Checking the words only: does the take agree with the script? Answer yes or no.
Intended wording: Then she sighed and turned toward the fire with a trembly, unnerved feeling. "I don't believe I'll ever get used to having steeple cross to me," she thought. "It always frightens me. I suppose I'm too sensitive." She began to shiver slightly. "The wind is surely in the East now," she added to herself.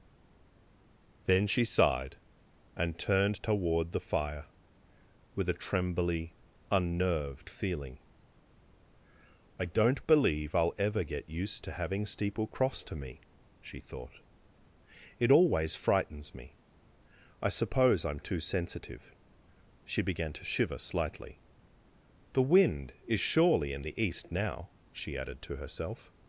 yes